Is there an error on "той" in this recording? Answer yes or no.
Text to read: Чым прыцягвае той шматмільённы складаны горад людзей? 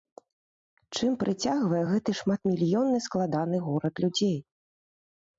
yes